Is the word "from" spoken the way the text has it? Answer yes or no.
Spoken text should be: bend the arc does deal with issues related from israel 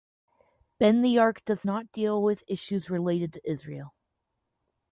no